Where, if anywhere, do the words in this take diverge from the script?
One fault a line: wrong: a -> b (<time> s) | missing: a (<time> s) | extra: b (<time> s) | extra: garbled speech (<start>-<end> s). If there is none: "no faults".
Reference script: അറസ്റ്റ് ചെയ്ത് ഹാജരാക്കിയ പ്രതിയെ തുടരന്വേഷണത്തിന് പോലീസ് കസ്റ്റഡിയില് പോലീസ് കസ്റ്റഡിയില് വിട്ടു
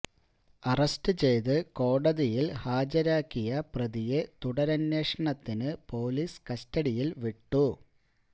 extra: കോടതിയില് (1.8 s)
missing: പോലീസ് കസ്റ്റഡിയില് (7.1 s)